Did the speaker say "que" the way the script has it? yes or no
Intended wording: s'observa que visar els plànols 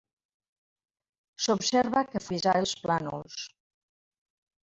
yes